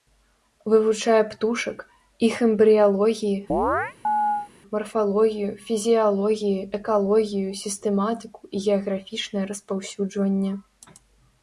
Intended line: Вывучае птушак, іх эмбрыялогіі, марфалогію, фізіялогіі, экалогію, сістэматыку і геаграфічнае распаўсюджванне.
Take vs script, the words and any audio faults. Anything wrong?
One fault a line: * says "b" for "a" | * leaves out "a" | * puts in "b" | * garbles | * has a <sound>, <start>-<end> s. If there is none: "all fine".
* has a chirp, 3.5-4.5 s